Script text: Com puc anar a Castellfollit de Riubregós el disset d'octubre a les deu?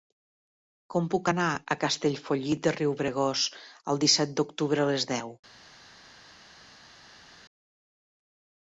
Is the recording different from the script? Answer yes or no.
no